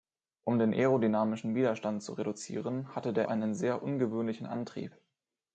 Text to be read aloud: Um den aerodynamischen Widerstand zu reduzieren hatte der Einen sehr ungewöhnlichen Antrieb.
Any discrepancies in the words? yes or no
no